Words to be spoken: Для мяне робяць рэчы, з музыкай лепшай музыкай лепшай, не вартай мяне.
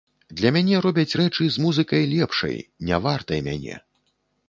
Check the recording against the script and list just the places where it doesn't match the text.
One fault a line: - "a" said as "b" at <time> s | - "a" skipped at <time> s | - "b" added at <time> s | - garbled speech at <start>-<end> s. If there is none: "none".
- "музыкай лепшай" skipped at 2.6 s